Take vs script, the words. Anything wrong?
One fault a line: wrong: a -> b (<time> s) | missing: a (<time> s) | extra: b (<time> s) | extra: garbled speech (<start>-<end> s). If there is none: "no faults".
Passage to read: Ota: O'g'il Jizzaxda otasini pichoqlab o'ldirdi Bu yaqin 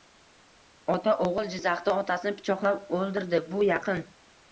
no faults